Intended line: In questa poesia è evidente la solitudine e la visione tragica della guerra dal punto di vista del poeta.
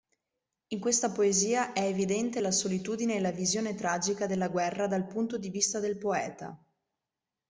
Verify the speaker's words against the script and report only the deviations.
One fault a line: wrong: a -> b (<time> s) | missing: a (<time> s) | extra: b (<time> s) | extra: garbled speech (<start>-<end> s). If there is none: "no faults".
no faults